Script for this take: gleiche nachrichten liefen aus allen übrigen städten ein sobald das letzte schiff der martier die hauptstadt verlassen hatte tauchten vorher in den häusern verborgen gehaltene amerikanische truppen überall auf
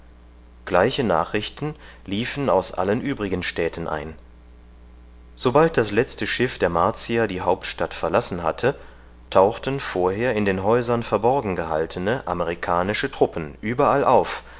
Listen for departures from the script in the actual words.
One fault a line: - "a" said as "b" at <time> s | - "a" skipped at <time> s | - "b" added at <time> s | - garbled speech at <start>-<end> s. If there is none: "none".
none